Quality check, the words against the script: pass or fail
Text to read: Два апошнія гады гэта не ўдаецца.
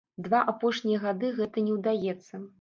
pass